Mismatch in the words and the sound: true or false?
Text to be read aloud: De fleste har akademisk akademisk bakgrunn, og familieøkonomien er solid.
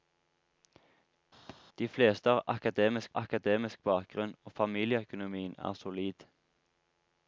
true